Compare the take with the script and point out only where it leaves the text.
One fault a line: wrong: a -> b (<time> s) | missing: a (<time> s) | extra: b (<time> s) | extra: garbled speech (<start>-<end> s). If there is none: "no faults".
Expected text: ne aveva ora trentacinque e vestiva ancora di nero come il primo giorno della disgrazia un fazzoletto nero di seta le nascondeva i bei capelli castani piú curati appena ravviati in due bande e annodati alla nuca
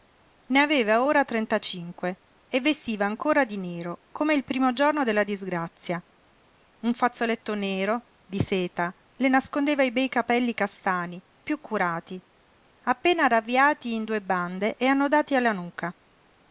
no faults